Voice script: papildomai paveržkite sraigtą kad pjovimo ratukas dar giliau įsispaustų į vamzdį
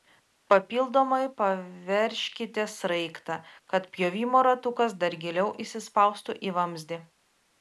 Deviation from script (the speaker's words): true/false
false